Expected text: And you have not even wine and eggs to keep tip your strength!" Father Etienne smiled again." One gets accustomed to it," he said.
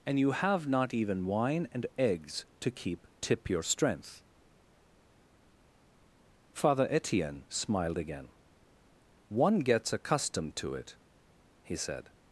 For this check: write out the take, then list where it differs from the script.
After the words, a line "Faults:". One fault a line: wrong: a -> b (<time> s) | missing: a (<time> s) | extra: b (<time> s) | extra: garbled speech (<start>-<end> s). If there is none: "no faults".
And you have not even wine and eggs to keep tip your strength!" Father Etienne smiled again." One gets accustomed to it," he said.
Faults:
no faults